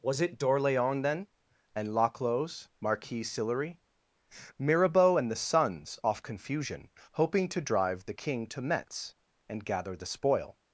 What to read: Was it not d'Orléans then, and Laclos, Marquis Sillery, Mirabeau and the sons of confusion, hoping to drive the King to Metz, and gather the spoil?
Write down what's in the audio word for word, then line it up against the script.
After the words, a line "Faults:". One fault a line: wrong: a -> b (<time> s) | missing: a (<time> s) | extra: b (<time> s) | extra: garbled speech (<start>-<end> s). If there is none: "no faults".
Was it d'Orléans then, and Laclos, Marquis Sillery, Mirabeau and the sons off confusion, hoping to drive the King to Metz, and gather the spoil?
Faults:
missing: not (0.4 s)
wrong: of -> off (6.0 s)